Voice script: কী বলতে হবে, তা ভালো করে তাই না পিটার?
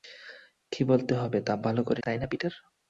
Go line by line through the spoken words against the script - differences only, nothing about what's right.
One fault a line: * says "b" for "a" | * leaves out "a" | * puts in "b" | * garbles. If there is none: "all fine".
all fine